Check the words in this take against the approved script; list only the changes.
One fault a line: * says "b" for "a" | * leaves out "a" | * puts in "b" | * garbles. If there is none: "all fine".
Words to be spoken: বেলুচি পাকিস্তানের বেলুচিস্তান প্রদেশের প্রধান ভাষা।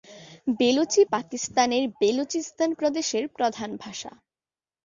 all fine